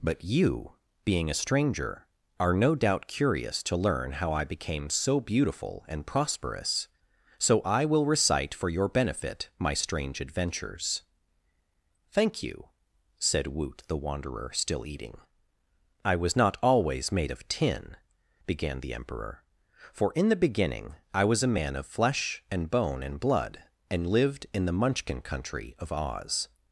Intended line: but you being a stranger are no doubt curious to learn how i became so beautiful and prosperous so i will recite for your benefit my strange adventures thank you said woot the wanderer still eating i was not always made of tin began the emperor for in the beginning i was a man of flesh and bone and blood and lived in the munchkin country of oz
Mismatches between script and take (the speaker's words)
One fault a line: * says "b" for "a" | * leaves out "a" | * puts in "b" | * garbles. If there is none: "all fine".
all fine